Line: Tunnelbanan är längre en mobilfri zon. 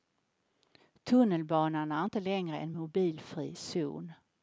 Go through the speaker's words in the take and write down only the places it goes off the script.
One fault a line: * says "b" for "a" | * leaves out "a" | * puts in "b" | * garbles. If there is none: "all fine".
* puts in "inte"